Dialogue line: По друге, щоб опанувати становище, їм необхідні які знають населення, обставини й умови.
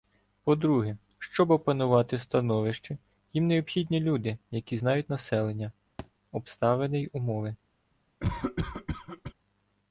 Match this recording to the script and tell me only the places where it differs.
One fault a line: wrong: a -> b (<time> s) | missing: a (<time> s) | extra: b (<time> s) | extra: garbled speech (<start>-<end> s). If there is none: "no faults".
extra: люди (4.0 s)